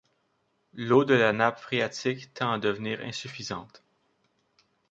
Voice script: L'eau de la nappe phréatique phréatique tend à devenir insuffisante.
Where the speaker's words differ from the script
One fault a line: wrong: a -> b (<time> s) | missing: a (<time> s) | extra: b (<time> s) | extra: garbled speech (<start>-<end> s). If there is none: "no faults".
missing: phréatique (2.3 s)